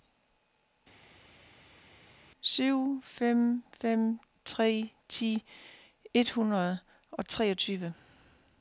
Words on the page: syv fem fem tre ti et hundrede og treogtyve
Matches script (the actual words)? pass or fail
pass